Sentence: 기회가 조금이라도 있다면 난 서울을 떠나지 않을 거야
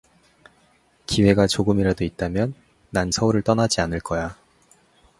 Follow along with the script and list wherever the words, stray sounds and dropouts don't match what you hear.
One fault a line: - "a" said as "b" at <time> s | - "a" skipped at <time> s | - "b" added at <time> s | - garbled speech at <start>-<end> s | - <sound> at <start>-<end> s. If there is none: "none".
none